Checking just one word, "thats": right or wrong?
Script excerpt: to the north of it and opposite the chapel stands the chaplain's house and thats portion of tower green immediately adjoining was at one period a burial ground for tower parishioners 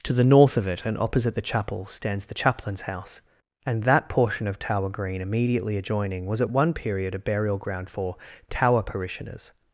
wrong